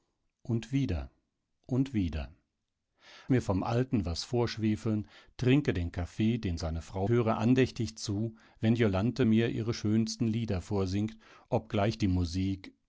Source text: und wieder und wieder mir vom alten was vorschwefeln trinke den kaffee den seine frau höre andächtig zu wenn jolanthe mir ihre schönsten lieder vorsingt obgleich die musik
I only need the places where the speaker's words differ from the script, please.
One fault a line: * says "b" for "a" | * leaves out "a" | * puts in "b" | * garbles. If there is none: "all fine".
all fine